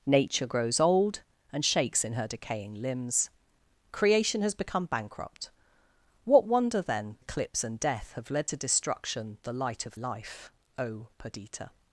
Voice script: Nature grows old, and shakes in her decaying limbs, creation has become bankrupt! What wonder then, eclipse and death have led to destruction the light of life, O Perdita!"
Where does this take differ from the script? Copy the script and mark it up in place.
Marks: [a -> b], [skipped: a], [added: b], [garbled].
Nature grows old, and shakes in her decaying limbs, creation has become bankrupt! What wonder then, eclipse and death have led to destruction the light of life, O Perdita!"